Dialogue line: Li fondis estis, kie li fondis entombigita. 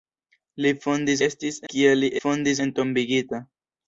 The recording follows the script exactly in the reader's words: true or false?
true